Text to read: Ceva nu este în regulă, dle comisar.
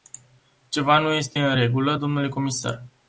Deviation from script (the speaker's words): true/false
false